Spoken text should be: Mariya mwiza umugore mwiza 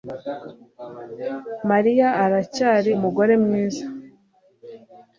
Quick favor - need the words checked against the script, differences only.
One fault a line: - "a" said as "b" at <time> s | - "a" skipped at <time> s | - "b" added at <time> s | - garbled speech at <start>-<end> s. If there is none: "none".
- "mwiza" said as "aracyari" at 2.2 s